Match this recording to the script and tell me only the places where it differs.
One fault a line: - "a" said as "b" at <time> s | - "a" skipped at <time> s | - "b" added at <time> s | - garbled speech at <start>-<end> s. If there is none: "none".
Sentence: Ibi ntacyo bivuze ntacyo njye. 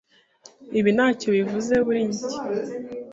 - "ntacyo" said as "kuri" at 1.8 s